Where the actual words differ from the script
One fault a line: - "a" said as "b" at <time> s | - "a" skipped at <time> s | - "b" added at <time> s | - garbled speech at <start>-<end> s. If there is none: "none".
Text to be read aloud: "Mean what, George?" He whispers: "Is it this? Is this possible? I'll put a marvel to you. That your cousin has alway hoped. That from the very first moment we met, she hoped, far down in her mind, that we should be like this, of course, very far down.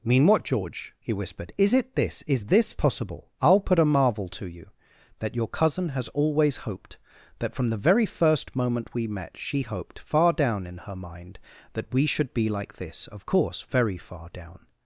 - "whispers" said as "whispered" at 1.1 s
- "alway" said as "always" at 6.1 s